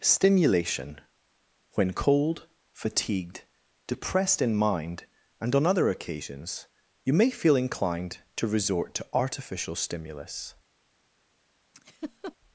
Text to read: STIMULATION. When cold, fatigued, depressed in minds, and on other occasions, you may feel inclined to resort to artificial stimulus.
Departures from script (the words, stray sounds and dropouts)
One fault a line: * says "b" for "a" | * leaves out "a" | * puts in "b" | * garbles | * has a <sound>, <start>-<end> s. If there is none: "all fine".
* says "mind" for "minds"
* has a laugh, 11.7-12.4 s